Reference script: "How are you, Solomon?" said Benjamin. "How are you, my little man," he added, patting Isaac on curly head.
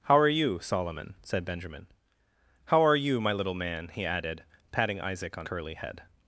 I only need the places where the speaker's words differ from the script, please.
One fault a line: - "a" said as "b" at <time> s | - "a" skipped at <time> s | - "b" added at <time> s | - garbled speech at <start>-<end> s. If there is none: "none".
none